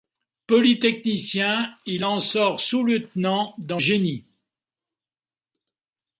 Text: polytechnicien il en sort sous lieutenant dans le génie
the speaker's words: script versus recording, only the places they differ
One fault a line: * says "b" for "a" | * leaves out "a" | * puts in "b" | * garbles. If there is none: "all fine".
* leaves out "le"